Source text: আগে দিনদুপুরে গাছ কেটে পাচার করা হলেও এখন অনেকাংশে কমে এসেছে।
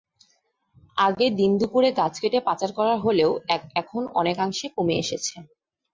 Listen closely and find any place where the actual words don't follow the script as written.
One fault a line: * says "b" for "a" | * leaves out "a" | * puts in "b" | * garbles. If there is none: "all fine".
all fine